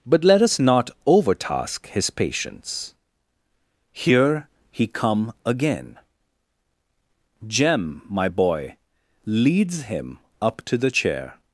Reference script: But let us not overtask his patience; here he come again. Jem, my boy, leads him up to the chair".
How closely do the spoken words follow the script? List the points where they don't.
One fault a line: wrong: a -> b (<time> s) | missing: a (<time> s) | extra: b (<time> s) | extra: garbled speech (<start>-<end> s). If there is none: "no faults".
no faults